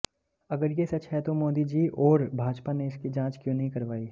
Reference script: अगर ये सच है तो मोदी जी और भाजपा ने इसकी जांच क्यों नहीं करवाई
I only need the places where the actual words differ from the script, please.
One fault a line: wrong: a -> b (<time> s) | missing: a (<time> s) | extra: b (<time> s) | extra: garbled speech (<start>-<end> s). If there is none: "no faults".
no faults